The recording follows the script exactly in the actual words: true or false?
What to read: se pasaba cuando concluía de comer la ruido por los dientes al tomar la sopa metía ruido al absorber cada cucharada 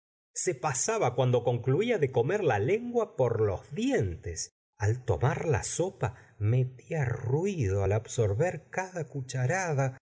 false